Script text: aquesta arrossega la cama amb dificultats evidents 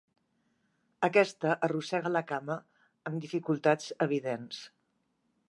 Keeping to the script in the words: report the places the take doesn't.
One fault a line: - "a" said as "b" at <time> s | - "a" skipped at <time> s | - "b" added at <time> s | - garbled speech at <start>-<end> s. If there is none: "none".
none